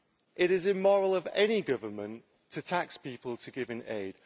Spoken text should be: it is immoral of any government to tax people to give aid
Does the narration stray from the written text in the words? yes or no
no